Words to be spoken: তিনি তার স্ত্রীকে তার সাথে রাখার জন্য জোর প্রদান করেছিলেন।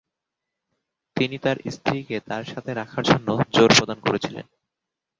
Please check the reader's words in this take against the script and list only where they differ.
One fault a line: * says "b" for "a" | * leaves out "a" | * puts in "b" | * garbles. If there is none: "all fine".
all fine